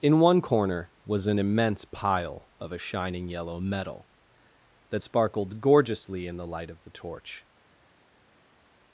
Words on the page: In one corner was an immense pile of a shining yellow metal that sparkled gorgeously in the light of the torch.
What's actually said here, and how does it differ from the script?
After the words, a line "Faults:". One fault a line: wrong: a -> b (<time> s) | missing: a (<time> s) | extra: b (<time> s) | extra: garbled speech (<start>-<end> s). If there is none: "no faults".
In one corner was an immense pile of a shining yellow metal that sparkled gorgeously in the light of the torch.
Faults:
no faults